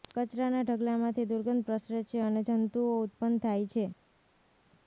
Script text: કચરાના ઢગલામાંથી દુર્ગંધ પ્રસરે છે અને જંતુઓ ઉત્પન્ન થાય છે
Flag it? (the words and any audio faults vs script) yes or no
no